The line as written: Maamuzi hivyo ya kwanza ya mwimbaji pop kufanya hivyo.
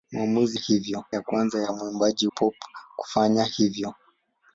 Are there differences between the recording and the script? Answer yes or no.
no